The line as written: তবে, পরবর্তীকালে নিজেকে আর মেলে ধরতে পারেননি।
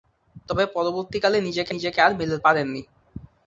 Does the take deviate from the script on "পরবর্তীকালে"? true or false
false